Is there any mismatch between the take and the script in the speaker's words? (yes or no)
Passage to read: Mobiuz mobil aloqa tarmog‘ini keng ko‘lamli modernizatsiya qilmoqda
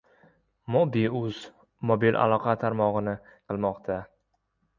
yes